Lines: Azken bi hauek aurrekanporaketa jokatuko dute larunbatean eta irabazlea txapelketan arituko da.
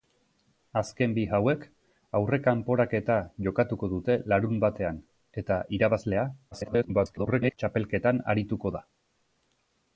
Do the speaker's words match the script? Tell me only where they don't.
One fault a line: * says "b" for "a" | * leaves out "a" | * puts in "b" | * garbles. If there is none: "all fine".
* garbles